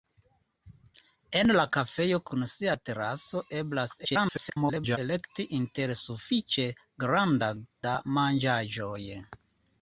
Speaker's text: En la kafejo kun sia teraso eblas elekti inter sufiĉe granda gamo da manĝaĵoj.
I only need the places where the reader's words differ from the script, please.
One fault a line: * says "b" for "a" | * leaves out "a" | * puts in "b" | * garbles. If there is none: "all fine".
* garbles
* leaves out "gamo"